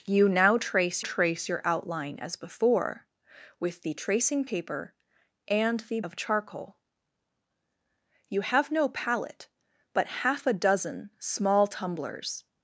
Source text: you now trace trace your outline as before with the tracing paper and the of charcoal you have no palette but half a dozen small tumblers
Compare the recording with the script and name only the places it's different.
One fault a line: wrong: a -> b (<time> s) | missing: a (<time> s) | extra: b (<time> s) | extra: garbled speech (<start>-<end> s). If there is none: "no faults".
no faults